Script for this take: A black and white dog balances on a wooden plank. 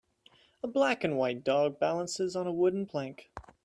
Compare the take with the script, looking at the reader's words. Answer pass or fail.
pass